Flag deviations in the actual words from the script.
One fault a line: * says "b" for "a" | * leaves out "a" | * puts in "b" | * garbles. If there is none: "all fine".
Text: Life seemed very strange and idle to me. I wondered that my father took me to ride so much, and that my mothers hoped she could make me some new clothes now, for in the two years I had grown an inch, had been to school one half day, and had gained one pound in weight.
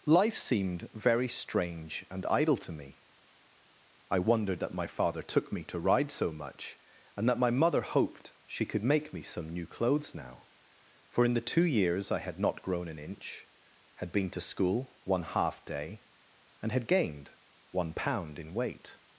* says "mother" for "mothers"
* puts in "not"